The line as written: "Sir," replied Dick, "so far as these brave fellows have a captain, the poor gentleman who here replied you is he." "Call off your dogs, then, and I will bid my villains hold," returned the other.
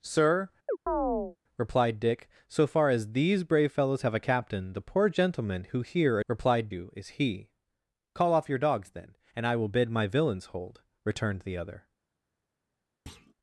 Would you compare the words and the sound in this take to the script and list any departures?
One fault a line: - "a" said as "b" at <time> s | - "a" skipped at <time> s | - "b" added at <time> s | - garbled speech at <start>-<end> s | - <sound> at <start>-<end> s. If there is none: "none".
- chirp at 0.7-1.4 s
- thud at 13.1-13.3 s